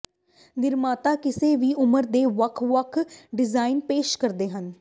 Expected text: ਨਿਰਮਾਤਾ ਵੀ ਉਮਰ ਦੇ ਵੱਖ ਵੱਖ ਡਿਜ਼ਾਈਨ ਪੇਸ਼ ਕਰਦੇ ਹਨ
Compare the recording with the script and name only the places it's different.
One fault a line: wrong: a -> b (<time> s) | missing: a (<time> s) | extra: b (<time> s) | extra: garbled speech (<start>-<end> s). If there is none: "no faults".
extra: ਕਿਸੇ (1.2 s)